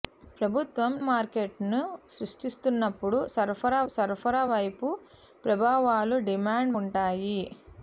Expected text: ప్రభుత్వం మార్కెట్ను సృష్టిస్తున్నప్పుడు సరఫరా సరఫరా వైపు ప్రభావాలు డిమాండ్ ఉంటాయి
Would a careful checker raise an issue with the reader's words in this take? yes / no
no